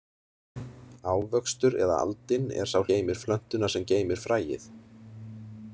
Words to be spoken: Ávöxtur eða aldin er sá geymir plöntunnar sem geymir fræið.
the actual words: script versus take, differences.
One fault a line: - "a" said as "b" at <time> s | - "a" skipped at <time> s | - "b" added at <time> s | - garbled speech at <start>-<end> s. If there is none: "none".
none